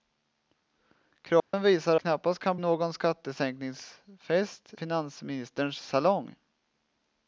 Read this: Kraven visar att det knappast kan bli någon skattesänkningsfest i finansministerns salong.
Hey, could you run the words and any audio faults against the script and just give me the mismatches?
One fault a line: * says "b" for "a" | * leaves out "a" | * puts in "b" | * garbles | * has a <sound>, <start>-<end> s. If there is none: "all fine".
* has a dropout, 1.4-1.5 s
* leaves out "att det"
* leaves out "bli"
* leaves out "i"